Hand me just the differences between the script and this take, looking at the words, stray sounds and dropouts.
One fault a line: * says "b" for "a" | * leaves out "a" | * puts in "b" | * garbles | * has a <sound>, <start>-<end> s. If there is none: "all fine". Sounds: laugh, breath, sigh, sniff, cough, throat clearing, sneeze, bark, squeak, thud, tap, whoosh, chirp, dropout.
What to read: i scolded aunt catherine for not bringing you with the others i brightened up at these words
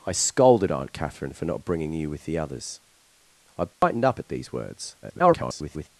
* has a dropout, 3.7-3.8 s
* garbles